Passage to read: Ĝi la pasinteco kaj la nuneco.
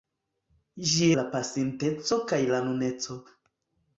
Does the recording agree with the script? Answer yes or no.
yes